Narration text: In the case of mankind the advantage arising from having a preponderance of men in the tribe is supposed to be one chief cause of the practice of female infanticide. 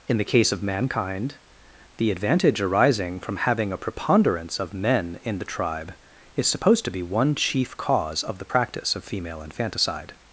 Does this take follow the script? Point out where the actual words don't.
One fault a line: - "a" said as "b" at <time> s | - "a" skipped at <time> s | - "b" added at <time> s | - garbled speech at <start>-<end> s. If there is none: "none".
none